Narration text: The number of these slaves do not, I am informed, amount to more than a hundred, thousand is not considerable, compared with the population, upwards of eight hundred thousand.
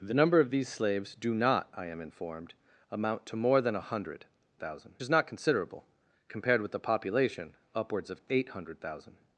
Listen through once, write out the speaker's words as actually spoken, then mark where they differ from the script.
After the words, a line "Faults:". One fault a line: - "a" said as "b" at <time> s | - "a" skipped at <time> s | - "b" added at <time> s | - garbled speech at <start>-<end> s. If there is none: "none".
The number of these slaves do not, I am informed, amount to more than a hundred, thousand is not considerable, compared with the population, upwards of eight hundred thousand.
Faults:
none